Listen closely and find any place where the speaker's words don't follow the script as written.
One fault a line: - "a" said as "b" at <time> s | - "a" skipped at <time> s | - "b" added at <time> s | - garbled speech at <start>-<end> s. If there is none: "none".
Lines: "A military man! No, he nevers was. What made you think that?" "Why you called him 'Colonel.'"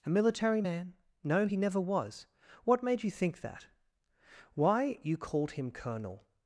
- "nevers" said as "never" at 1.6 s